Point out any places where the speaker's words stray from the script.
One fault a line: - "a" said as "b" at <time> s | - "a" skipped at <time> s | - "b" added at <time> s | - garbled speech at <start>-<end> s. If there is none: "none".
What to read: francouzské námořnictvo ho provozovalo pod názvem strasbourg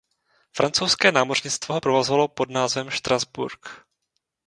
none